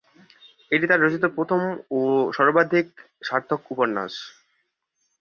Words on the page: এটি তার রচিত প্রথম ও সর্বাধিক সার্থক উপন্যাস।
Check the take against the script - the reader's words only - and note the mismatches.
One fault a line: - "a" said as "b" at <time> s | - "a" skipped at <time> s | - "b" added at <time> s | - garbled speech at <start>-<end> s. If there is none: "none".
none